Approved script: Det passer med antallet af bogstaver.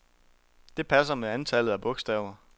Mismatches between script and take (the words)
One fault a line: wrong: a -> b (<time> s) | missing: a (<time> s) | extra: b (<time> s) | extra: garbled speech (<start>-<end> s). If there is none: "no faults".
no faults